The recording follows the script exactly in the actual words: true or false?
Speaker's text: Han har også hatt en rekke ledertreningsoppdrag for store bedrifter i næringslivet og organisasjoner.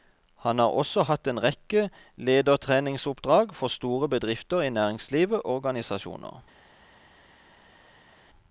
false